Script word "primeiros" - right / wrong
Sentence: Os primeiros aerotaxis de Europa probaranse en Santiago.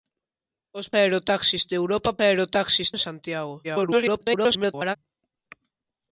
wrong